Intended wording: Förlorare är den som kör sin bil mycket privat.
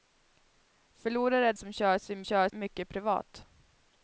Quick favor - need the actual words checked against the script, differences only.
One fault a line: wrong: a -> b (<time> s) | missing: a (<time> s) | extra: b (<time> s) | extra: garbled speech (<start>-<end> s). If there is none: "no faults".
missing: den (1.5 s)
wrong: bil -> kör (2.2 s)